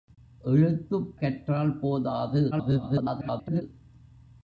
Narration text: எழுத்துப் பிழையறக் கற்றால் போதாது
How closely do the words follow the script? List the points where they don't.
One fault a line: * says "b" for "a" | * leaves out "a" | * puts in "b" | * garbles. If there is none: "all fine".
* leaves out "பிழையறக்"
* garbles